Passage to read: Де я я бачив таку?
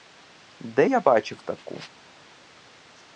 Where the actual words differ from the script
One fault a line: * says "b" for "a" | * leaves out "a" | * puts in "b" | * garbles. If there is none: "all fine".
* leaves out "я"